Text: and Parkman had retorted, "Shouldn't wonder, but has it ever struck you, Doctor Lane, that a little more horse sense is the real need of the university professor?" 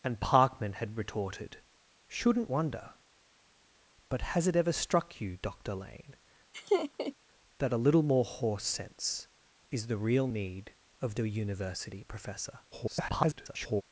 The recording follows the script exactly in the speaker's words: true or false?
false